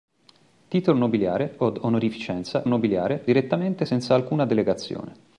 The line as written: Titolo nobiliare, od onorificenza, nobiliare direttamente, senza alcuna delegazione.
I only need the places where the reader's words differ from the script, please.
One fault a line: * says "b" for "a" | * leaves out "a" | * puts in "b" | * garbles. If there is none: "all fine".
all fine